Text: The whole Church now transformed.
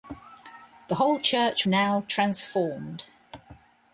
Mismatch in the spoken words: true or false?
false